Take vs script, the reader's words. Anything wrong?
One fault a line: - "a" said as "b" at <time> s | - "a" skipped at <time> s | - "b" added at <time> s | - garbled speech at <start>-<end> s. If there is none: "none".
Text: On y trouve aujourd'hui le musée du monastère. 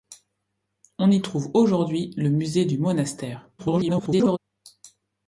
- garbled speech at 3.6-4.4 s